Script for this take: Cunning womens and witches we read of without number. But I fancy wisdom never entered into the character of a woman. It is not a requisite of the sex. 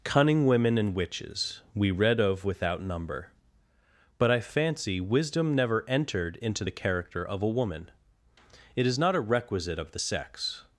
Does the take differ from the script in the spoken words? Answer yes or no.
yes